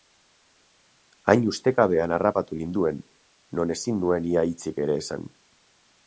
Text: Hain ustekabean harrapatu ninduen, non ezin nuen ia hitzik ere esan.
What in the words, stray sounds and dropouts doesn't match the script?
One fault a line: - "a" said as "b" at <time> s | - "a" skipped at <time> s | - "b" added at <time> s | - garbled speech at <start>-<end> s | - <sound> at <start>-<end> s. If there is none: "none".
none